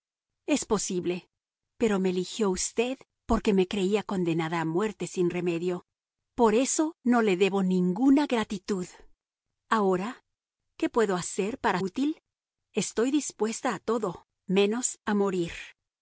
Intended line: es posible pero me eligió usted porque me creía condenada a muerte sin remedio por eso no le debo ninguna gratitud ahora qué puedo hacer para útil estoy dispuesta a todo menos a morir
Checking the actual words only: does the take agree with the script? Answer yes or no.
yes